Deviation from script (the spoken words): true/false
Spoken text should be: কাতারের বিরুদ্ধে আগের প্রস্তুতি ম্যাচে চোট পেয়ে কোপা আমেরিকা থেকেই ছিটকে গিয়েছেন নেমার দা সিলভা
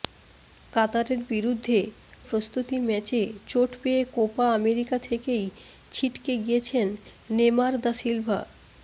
true